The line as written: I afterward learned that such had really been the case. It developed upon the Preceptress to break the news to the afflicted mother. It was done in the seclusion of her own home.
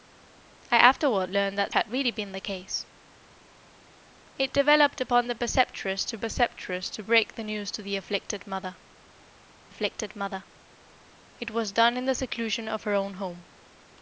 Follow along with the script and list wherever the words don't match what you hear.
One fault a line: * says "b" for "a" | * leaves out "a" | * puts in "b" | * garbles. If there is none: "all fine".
* leaves out "such"
* puts in "Preceptress to"
* puts in "afflicted mother"